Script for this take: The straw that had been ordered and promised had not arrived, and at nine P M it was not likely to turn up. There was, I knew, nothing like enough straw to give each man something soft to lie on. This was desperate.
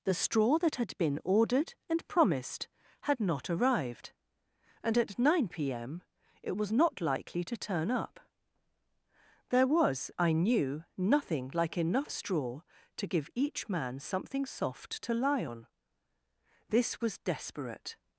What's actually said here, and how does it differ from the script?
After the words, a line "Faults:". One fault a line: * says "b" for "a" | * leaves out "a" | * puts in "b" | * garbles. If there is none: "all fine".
The straw that had been ordered and promised had not arrived, and at nine P M it was not likely to turn up. There was, I knew, nothing like enough straw to give each man something soft to lie on. This was desperate.
Faults:
all fine